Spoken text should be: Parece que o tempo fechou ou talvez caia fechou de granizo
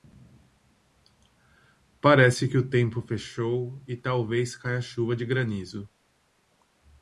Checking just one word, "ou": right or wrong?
wrong